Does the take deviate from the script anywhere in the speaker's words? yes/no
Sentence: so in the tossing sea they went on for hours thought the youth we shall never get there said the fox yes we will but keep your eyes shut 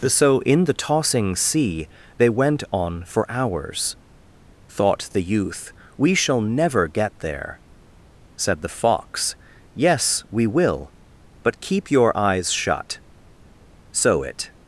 yes